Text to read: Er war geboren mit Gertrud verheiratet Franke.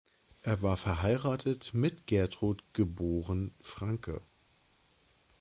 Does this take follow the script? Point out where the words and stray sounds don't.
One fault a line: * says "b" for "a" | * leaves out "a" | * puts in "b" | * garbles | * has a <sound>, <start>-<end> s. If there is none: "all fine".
* says "verheiratet" for "geboren"
* says "geboren" for "verheiratet"